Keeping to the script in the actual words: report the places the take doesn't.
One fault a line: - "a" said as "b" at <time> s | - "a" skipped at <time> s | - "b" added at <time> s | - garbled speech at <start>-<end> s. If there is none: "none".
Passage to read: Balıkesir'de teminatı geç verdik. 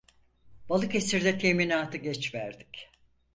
none